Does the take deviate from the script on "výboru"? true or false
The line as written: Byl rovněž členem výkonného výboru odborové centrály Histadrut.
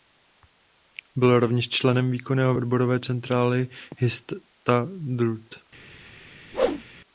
true